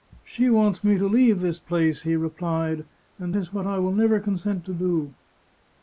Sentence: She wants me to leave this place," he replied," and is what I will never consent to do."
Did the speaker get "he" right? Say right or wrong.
right